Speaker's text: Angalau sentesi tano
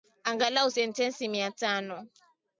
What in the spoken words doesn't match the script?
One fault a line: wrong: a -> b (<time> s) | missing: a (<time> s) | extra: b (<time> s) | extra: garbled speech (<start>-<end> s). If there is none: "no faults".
extra: mia (1.3 s)